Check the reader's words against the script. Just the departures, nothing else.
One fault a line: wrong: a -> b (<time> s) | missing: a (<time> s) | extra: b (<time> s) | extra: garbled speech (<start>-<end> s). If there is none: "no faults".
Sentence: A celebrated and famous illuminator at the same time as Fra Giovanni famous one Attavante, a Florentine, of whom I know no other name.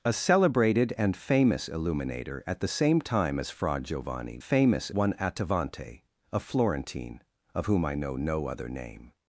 no faults